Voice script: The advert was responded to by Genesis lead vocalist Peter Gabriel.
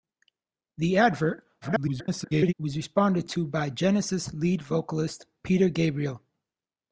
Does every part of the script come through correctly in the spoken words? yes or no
no